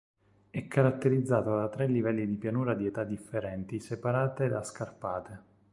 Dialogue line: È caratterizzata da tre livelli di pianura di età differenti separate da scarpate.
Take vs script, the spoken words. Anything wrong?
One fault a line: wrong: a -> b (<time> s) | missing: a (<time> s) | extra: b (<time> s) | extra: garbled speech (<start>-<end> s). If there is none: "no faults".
no faults